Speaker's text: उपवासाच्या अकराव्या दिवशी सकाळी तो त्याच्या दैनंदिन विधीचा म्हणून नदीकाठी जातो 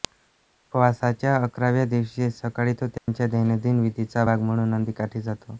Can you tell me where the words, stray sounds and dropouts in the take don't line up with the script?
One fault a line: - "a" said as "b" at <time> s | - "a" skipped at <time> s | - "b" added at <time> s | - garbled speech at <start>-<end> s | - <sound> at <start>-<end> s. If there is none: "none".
- dropout at 3.0-3.1 s
- "भाग" added at 4.2 s